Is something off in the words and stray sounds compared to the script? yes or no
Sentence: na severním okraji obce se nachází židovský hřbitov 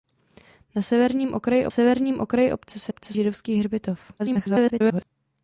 yes